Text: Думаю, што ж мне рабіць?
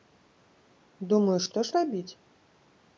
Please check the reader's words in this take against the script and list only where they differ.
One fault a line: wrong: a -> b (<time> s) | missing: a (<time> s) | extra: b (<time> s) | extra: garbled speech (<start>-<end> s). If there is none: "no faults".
missing: мне (1.8 s)